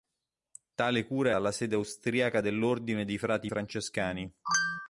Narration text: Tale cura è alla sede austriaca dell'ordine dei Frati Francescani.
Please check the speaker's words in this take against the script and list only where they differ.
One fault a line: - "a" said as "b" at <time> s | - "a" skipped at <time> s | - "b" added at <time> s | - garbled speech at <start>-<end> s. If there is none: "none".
none